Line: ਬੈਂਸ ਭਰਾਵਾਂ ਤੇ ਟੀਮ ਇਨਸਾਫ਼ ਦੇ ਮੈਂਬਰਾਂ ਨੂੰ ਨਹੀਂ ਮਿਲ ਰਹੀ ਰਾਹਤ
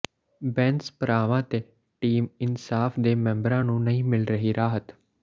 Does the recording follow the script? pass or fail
pass